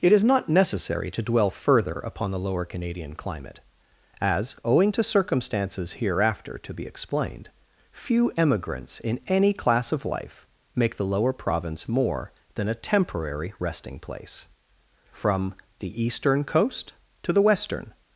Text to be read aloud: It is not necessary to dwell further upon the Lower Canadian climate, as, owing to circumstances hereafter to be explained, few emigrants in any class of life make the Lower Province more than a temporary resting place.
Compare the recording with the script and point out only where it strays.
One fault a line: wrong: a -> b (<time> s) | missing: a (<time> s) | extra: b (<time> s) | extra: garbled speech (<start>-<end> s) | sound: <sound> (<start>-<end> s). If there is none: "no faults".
extra: From the eastern coast to the western (15.1 s)